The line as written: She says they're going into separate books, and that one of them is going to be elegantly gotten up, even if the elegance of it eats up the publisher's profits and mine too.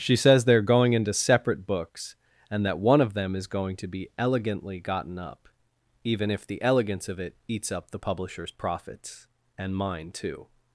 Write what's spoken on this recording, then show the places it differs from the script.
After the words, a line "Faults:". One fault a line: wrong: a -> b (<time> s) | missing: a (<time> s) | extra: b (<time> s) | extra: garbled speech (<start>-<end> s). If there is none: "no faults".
She says they're going into separate books, and that one of them is going to be elegantly gotten up, even if the elegance of it eats up the publisher's profits and mine too.
Faults:
no faults